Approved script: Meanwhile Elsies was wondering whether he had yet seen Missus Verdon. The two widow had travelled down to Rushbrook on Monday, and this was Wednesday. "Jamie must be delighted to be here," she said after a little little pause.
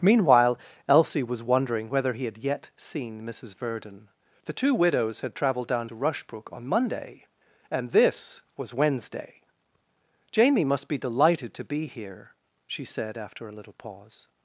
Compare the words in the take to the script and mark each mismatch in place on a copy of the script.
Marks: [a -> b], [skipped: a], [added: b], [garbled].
Meanwhile [Elsies -> Elsie] was wondering whether he had yet seen Missus Verdon. The two [widow -> widows] had travelled down to Rushbrook on Monday, and this was Wednesday. "Jamie must be delighted to be here," she said after a little [skipped: little] pause.